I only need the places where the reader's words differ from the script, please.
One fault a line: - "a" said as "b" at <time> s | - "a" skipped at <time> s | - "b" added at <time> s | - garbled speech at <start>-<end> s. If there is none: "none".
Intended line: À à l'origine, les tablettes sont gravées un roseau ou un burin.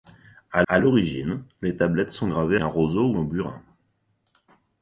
none